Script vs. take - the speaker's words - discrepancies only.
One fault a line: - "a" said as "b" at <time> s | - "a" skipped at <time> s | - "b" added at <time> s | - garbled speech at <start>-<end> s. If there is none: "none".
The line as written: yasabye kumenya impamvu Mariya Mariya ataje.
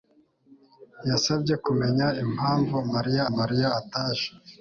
none